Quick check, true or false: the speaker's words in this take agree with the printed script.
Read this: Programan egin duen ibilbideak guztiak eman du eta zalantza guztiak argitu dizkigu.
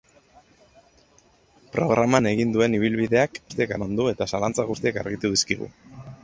true